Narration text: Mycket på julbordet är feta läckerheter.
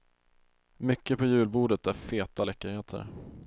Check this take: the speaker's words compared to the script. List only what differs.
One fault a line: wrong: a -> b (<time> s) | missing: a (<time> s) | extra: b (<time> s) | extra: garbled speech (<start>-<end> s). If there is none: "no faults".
no faults